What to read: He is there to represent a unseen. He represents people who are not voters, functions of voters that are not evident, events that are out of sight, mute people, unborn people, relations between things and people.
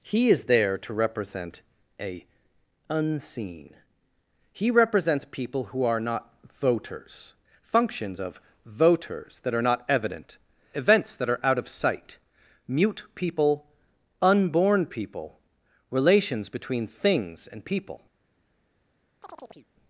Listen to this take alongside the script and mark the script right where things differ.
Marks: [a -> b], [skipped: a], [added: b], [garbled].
He is there to represent a unseen. He represents people who are not voters, functions of voters that are not evident, events that are out of sight, mute people, unborn people, relations between things and people.